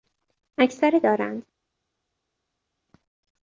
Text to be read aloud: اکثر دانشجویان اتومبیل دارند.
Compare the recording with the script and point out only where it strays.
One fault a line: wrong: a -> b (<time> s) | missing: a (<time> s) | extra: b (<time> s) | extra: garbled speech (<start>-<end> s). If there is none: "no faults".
missing: دانشجویان اتومبیل (1.0 s)